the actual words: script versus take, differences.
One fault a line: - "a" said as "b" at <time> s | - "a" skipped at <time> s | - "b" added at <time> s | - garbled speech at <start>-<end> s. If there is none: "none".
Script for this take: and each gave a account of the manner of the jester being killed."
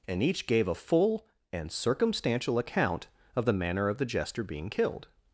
- "full and circumstantial" added at 0.8 s